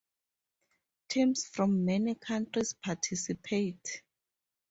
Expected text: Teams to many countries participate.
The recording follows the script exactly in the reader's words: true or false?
false